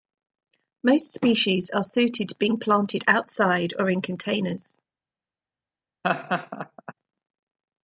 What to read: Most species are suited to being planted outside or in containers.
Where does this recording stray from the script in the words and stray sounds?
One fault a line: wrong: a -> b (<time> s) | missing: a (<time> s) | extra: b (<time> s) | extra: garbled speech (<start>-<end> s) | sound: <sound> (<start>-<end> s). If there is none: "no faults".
sound: laugh (6.0-6.9 s)